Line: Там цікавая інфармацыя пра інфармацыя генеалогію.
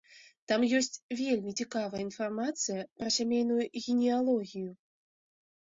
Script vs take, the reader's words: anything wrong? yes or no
yes